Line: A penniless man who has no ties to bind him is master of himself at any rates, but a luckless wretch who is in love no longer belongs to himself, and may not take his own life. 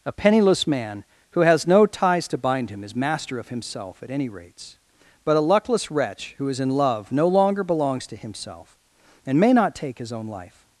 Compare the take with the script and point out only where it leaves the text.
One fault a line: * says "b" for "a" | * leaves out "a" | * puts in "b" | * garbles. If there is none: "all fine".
all fine